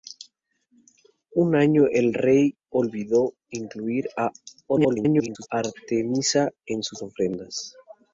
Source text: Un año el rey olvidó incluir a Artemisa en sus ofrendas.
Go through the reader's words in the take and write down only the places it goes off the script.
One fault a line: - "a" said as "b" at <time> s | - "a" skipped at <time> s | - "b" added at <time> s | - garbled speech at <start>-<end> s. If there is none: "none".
- garbled speech at 4.7-5.5 s